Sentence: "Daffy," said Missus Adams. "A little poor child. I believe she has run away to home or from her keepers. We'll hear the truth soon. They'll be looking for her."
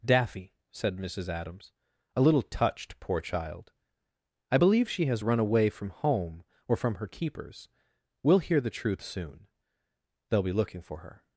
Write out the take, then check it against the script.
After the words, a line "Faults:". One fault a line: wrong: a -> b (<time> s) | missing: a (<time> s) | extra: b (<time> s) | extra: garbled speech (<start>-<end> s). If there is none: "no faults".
"Daffy," said Missus Adams. "A little touched, poor child. I believe she has run away from home or from her keepers. We'll hear the truth soon. They'll be looking for her."
Faults:
extra: touched (2.4 s)
wrong: to -> from (5.7 s)